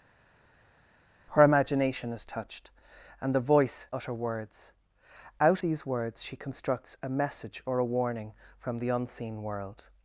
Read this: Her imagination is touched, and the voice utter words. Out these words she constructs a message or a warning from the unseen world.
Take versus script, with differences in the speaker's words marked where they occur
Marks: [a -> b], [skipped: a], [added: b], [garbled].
Her imagination is touched, and the voice utter words. Out these words she constructs a message or a warning from the unseen world.